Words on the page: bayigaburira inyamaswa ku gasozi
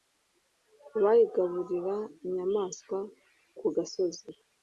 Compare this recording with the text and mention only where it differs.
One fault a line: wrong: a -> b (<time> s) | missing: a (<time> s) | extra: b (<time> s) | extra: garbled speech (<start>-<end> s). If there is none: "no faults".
no faults